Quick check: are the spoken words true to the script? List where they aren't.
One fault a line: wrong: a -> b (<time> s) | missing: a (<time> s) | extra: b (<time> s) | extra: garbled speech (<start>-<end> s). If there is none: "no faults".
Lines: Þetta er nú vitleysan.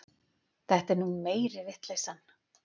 extra: meiri (1.3 s)